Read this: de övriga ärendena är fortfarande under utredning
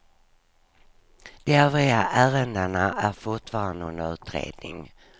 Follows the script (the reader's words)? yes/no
yes